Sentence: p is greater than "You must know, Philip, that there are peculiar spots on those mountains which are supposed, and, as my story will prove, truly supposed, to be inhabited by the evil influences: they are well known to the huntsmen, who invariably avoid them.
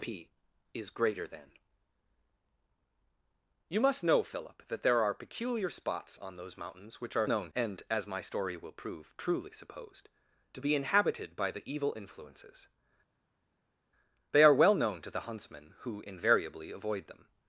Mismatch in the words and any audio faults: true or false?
true